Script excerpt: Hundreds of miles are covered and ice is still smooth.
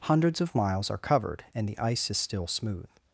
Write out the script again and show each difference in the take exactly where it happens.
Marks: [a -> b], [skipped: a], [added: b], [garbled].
Hundreds of miles are covered and [added: the] ice is still smooth.